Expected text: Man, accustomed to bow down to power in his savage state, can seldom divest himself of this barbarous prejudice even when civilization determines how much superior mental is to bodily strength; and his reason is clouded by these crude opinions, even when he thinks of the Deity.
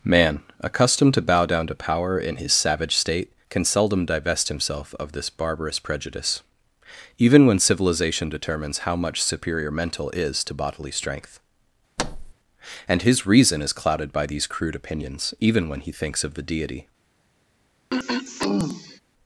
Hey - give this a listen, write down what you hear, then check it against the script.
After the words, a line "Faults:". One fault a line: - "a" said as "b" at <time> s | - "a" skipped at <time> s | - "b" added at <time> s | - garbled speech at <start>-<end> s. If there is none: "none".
Man, accustomed to bow down to power in his savage state, can seldom divest himself of this barbarous prejudice even when civilization determines how much superior mental is to bodily strength; and his reason is clouded by these crude opinions, even when he thinks of the Deity.
Faults:
none